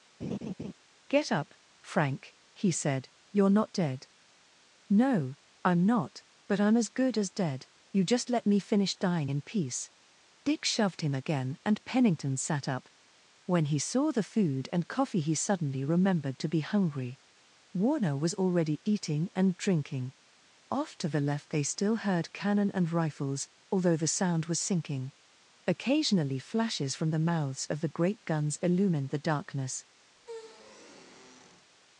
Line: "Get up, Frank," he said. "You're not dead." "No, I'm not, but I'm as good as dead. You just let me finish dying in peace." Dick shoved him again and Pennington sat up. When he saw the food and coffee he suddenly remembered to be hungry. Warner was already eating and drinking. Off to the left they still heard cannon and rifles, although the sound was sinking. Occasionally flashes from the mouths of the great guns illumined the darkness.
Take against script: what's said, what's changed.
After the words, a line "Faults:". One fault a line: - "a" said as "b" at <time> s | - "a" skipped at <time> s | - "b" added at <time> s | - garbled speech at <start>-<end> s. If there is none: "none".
"Get up, Frank," he said. "You're not dead." "No, I'm not, but I'm as good as dead. You just let me finish dying in peace." Dick shoved him again and Pennington sat up. When he saw the food and coffee he suddenly remembered to be hungry. Warner was already eating and drinking. Off to the left they still heard cannon and rifles, although the sound was sinking. Occasionally flashes from the mouths of the great guns illumined the darkness.
Faults:
none